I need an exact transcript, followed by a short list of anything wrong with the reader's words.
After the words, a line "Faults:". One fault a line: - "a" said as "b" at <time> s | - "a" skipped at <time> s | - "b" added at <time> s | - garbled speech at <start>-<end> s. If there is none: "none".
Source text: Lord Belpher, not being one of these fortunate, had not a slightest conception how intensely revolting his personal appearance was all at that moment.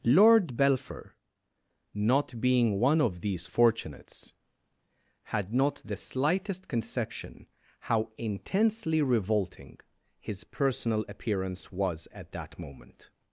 Lord Belpher, not being one of these fortunates, had not the slightest conception how intensely revolting his personal appearance was at that moment.
Faults:
- "fortunate" said as "fortunates" at 3.5 s
- "a" said as "the" at 5.8 s
- "all" skipped at 12.1 s